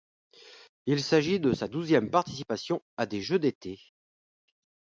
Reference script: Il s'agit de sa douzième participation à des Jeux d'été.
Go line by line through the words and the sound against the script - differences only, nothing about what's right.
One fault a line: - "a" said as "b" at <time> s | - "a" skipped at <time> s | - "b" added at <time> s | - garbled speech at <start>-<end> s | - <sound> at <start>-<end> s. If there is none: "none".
none